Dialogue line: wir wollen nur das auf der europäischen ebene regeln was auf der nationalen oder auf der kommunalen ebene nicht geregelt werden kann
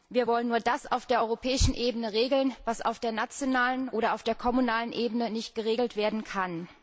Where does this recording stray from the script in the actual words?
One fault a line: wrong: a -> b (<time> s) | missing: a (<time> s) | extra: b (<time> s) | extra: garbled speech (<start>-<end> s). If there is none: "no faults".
no faults